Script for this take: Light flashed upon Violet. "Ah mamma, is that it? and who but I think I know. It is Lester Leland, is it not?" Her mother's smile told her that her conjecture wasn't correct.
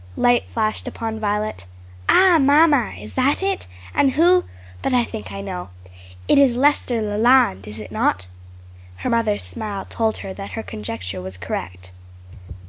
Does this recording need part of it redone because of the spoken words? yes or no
yes